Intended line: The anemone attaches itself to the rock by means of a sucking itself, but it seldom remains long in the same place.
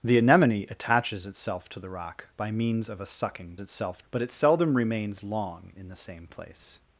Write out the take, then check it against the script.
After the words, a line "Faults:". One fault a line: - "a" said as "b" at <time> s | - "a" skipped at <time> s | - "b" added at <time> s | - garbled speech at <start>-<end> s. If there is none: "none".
The anemone attaches itself to the rock by means of a sucking itself, but it seldom remains long in the same place.
Faults:
none